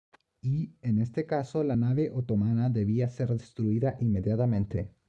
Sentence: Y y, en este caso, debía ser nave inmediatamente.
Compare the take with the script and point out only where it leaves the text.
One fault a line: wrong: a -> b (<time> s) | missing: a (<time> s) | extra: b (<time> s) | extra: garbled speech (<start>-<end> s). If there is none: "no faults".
missing: y (0.8 s)
extra: la nave otomana (1.6 s)
wrong: nave -> destruida (3.3 s)